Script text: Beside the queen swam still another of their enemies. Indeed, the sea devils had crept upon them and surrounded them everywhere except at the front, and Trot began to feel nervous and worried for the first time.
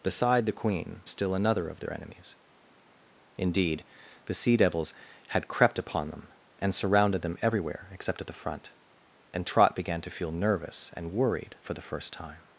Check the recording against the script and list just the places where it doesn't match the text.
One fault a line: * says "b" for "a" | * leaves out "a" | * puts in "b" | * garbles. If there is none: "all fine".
* leaves out "swam"